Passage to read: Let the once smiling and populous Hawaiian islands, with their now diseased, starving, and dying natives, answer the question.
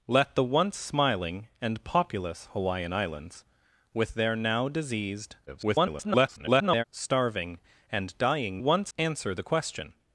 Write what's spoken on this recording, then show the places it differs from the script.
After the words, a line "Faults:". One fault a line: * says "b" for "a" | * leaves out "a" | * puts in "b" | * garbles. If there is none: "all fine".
Let the once smiling and populous Hawaiian islands, with their now diseased, [garbled] starving, and dying once, answer the question.
Faults:
* garbles
* says "once" for "natives"